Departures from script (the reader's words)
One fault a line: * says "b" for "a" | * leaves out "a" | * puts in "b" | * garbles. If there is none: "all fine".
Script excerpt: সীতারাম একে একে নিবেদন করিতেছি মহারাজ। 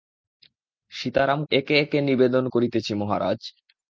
all fine